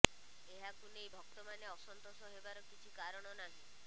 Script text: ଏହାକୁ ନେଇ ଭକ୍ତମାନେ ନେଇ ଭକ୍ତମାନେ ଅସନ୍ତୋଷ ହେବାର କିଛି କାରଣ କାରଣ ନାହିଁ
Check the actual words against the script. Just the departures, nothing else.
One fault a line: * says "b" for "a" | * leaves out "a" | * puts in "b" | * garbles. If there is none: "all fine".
* leaves out "ନେଇ ଭକ୍ତମାନେ"
* leaves out "କାରଣ"